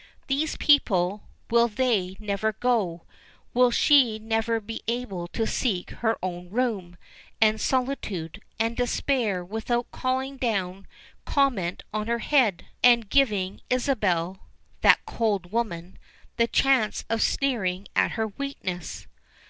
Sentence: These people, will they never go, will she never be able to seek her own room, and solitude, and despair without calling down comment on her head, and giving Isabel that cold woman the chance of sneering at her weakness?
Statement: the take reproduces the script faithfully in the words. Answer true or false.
true